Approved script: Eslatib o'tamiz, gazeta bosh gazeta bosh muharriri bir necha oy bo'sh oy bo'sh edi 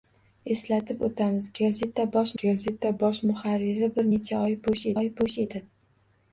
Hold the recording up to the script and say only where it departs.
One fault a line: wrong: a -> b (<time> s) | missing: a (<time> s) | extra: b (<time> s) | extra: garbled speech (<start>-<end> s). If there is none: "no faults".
no faults